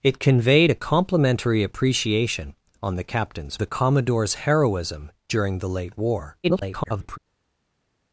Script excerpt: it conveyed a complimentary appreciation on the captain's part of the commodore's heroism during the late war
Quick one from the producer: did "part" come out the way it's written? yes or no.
no